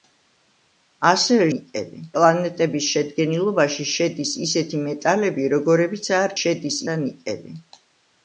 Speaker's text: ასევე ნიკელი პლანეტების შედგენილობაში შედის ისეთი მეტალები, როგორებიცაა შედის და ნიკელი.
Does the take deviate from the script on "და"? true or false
false